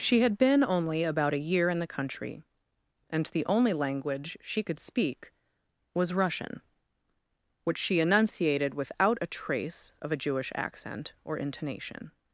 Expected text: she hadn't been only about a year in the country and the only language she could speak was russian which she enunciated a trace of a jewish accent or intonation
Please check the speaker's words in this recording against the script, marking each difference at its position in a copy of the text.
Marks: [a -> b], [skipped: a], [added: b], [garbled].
she [hadn't -> had] been only about a year in the country and the only language she could speak was russian which she enunciated [added: without] a trace of a jewish accent or intonation